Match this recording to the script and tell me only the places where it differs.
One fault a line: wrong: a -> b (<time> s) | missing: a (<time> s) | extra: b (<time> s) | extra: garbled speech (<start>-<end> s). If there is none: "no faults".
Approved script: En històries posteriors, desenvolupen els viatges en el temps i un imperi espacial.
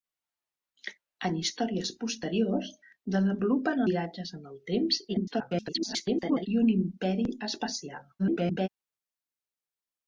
missing: els (3.8 s)
extra: garbled speech (5.1-6.5 s)
extra: garbled speech (8.2-8.7 s)